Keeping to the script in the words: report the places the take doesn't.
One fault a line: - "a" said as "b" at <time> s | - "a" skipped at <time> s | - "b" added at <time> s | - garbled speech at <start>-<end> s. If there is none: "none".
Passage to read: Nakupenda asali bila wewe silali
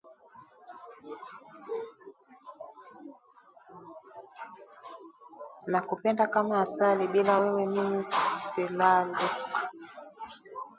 - "kama" added at 6.3 s
- "mimi" added at 7.7 s